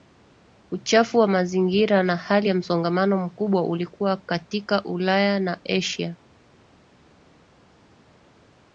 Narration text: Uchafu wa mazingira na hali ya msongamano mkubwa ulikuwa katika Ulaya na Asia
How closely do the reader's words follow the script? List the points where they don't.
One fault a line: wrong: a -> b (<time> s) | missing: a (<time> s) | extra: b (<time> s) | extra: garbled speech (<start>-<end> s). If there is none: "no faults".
no faults